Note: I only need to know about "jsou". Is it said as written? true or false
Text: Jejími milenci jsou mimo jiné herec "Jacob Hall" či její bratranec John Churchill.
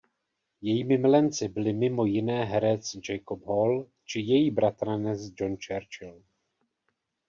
false